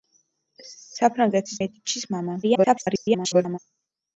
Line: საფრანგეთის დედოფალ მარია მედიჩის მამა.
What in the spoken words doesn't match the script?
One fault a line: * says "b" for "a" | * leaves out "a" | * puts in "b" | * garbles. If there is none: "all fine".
* leaves out "დედოფალ მარია"
* garbles